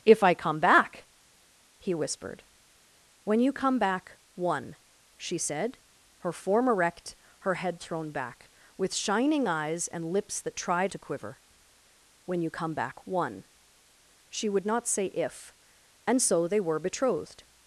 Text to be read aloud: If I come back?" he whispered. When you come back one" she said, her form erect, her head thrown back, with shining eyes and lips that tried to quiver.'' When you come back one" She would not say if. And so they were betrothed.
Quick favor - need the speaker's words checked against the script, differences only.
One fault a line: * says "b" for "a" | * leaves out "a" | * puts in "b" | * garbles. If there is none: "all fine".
all fine